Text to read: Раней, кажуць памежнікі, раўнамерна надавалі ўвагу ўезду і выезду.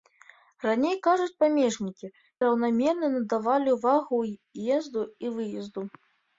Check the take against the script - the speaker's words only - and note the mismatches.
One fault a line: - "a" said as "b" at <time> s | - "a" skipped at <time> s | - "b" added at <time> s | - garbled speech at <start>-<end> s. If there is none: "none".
none